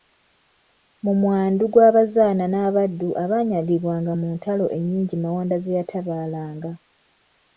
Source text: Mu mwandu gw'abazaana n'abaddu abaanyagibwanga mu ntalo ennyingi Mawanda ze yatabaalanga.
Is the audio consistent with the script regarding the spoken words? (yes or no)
yes